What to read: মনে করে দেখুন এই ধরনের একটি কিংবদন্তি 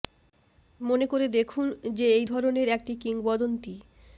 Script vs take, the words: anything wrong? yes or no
yes